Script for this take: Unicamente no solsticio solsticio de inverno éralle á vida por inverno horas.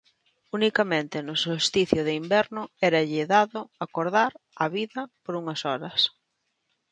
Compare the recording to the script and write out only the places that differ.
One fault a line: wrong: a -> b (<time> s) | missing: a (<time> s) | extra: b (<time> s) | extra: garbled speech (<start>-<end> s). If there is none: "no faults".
missing: solsticio (2.0 s)
extra: dado acordar (3.4 s)
wrong: inverno -> unhas (5.4 s)